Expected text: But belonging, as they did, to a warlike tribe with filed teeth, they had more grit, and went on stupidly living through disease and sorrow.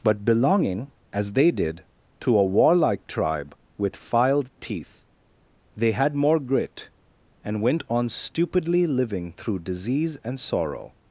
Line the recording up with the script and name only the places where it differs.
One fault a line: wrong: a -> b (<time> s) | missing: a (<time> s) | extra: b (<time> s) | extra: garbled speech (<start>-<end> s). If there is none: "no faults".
no faults